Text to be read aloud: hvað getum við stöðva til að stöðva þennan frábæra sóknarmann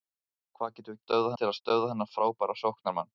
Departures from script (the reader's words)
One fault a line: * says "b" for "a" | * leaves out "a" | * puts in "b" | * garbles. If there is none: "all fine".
all fine